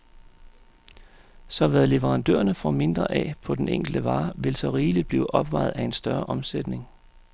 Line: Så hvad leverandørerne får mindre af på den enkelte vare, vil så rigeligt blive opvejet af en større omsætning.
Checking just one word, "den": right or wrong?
right